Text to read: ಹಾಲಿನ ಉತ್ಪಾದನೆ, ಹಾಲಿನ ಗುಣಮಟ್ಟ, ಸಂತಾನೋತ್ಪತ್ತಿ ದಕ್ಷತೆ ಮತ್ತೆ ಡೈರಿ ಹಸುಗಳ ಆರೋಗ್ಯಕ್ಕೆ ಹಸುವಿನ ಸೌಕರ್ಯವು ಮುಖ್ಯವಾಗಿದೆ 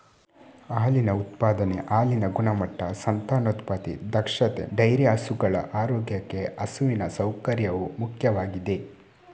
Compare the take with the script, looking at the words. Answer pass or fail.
fail